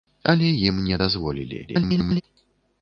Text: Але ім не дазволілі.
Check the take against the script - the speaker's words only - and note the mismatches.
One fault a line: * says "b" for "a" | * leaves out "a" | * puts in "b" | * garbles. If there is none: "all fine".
* garbles